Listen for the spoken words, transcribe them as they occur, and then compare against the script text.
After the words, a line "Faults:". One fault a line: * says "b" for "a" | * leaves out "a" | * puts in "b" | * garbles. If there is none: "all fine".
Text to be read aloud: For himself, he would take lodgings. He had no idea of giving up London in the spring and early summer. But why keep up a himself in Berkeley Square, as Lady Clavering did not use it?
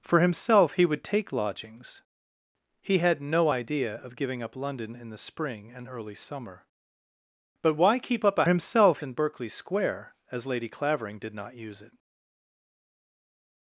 For himself, he would take lodgings. He had no idea of giving up London in the spring and early summer. But why keep up a himself in Berkeley Square, as Lady Clavering did not use it?
Faults:
all fine